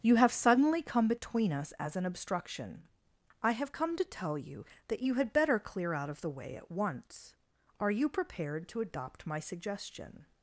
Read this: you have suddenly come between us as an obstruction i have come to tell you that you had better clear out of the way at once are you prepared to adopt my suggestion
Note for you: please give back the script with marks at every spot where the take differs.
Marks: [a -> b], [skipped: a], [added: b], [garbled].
you have suddenly come between us as an obstruction i have come to tell you that you had better clear out of the way at once are you prepared to adopt my suggestion